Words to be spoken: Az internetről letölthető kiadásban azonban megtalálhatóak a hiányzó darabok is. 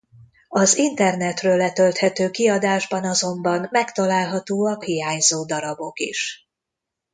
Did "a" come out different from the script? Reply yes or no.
yes